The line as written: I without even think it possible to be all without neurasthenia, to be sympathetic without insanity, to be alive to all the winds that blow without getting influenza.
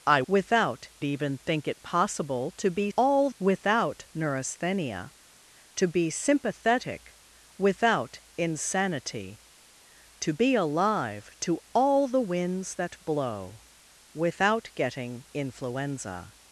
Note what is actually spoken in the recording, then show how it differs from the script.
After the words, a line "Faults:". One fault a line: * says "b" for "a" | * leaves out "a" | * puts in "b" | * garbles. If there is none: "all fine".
I without even think it possible to be all without neurasthenia, to be sympathetic without insanity, to be alive to all the winds that blow without getting influenza.
Faults:
all fine